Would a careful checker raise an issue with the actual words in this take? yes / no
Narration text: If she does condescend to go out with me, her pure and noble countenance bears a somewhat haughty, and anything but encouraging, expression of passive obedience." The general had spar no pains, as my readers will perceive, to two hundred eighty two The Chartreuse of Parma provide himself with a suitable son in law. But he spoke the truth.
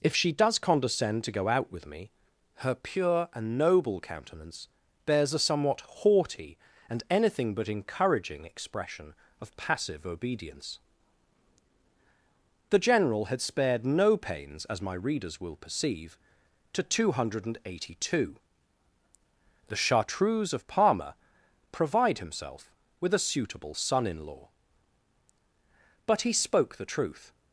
yes